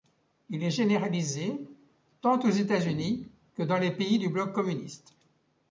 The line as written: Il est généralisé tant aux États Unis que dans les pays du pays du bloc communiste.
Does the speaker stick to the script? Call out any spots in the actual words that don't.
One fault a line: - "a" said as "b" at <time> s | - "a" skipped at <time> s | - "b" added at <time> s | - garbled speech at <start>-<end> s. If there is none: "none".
- "pays du" skipped at 4.3 s